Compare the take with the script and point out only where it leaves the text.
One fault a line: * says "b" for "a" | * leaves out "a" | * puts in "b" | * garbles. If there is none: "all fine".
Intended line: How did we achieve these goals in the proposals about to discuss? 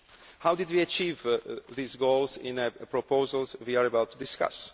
* puts in "we are"